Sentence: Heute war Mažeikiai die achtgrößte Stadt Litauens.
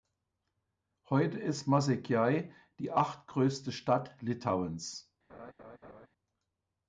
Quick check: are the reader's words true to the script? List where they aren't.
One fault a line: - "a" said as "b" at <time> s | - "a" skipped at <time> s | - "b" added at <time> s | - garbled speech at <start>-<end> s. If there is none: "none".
- "war" said as "ist" at 1.4 s